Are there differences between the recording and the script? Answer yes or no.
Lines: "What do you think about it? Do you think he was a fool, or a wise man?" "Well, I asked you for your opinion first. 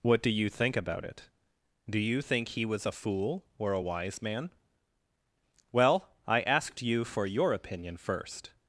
no